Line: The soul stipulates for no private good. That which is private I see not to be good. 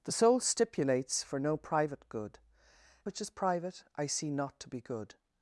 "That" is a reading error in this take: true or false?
true